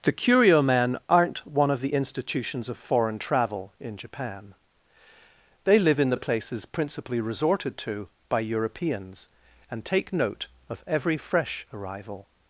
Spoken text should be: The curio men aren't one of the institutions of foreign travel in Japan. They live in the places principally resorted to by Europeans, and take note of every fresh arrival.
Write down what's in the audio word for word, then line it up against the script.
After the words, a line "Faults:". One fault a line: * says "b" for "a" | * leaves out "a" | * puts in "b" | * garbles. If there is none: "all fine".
The curio men aren't one of the institutions of foreign travel in Japan. They live in the places principally resorted to by Europeans, and take note of every fresh arrival.
Faults:
all fine